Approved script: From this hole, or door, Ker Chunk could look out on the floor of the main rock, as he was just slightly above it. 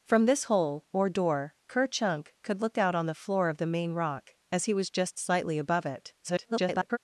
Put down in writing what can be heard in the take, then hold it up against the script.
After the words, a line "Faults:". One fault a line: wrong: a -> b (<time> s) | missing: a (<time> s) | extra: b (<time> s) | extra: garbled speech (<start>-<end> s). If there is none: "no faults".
From this hole, or door, Ker Chunk could look out on the floor of the main rock, as he was just slightly above it. [garbled]
Faults:
extra: garbled speech (6.2-7.0 s)